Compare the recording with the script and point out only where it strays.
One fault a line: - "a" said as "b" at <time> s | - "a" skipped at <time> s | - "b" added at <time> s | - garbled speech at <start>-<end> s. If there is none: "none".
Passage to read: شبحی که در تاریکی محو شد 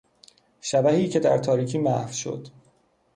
none